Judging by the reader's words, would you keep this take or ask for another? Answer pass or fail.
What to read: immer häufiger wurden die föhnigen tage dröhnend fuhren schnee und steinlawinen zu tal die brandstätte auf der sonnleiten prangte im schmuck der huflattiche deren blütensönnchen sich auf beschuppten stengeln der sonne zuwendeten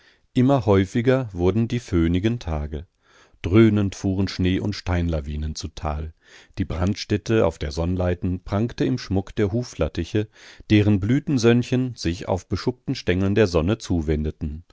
pass